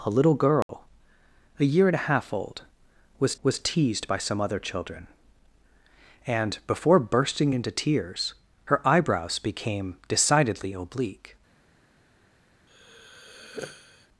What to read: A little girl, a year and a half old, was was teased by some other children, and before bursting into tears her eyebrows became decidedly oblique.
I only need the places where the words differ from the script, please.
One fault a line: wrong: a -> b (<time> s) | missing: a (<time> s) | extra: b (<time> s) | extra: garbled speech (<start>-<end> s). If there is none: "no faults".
no faults